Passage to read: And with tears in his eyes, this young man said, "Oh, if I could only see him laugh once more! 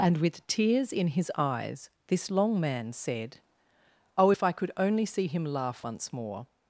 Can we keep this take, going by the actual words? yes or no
no